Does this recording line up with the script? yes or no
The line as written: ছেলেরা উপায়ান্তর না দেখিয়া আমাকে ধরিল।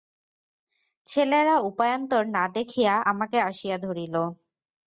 no